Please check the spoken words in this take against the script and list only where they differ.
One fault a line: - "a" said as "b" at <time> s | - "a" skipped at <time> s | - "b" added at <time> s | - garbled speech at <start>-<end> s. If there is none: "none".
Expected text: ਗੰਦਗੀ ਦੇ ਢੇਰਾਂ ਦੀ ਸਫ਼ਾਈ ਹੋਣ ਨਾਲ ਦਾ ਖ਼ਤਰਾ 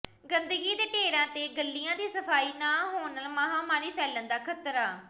- "ਤੇ ਗਲੀਆਂ" added at 1.3 s
- "ਨਾ" added at 2.5 s
- "ਮਹਾਮਾਰੀ ਫੈਲਣ" added at 3.3 s